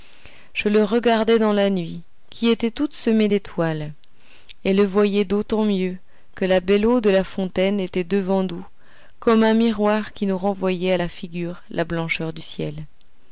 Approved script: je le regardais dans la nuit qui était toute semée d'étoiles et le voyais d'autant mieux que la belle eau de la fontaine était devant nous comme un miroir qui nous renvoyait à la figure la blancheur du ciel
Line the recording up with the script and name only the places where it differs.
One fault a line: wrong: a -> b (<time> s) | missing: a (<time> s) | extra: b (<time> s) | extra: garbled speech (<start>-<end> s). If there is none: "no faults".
no faults